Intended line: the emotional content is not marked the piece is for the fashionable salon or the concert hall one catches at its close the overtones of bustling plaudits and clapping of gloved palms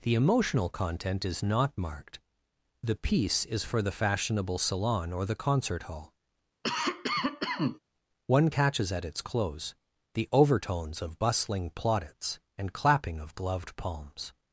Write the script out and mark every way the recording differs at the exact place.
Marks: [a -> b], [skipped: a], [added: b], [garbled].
the emotional content is not marked the piece is for the fashionable salon or the concert hall one catches at its close the overtones of bustling plaudits and clapping of gloved palms